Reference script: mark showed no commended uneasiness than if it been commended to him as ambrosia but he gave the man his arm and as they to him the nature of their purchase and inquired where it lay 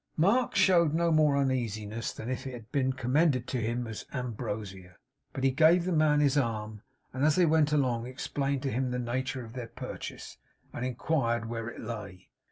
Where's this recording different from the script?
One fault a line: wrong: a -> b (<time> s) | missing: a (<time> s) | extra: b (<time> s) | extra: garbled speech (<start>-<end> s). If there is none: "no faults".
wrong: commended -> more (1.1 s)
extra: had (2.5 s)
extra: went along explained (7.4 s)